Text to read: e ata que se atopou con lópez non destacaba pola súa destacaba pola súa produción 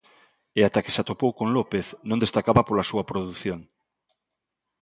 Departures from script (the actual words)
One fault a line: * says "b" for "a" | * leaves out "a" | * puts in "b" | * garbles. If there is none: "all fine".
* leaves out "destacaba pola súa"